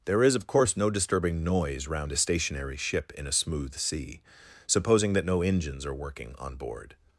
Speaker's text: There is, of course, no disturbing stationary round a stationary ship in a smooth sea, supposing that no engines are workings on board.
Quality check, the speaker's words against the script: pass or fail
fail